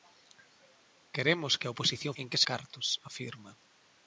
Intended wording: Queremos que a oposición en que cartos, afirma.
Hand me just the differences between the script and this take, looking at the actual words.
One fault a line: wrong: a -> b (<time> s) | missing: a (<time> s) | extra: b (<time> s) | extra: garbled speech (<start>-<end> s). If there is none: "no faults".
no faults